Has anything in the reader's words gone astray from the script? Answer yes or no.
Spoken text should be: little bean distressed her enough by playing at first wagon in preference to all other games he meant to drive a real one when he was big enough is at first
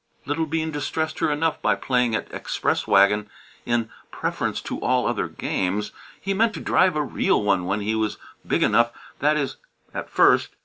yes